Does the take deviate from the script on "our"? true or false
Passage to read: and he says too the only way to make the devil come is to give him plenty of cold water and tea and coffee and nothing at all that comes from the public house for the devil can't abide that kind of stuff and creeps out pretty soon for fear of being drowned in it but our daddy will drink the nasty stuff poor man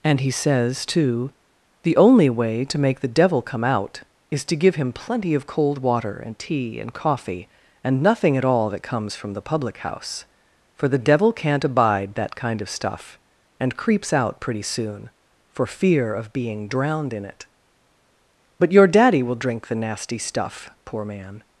true